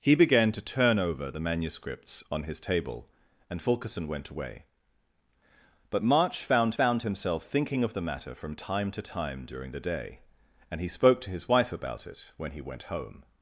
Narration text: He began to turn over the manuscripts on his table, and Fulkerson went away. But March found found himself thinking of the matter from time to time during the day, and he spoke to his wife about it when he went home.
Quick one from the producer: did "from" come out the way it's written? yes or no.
yes